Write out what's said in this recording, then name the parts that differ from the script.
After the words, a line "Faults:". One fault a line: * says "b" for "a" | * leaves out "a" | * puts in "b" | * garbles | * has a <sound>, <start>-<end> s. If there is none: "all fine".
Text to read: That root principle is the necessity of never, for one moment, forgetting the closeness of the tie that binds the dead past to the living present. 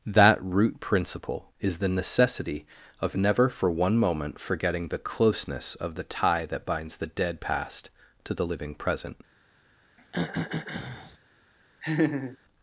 That root principle is the necessity of never, for one moment, forgetting the closeness of the tie that binds the dead past to the living present.
Faults:
* has a throat clearing, 10.0-11.2 s
* has a laugh, 11.8-12.4 s